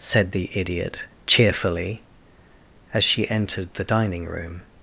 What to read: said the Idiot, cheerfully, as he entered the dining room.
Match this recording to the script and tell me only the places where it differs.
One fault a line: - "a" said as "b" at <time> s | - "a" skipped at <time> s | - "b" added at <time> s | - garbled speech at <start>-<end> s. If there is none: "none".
- "he" said as "she" at 3.0 s